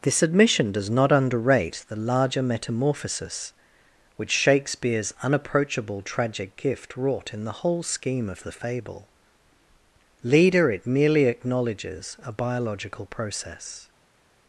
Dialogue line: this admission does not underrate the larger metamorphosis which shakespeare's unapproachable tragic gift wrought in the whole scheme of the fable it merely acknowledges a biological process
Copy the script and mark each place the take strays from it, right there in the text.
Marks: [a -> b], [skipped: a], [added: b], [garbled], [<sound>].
this admission does not underrate the larger metamorphosis which shakespeare's unapproachable tragic gift wrought in the whole scheme of the fable [added: leader] it merely acknowledges a biological process